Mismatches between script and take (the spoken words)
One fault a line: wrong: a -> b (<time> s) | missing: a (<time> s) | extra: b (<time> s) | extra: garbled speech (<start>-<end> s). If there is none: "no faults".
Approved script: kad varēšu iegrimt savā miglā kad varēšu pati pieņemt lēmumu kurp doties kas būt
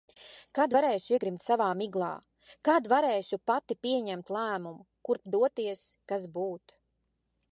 no faults